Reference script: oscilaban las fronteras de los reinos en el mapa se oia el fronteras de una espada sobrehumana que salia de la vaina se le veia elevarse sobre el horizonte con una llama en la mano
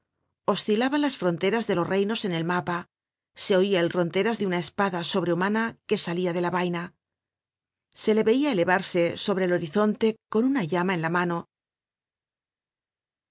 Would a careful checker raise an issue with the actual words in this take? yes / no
no